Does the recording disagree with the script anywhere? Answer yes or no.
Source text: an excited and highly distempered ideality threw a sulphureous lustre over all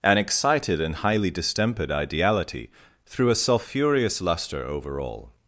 no